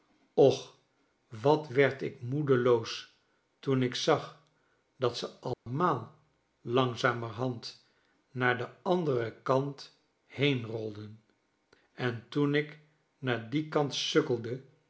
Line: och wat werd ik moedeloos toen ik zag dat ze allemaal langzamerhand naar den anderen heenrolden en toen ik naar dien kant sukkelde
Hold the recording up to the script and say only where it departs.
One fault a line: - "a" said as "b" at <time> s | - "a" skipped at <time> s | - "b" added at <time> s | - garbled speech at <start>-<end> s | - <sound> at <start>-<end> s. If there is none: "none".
- dropout at 5.5-5.7 s
- "kant" added at 9.4 s